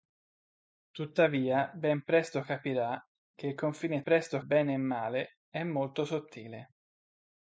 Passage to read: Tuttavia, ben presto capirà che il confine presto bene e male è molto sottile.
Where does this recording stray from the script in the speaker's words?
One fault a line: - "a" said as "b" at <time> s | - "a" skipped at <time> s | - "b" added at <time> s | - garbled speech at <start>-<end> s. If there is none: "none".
none